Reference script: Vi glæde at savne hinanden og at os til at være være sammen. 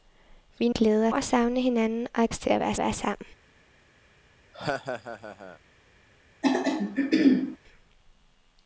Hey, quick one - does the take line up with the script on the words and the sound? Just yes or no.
no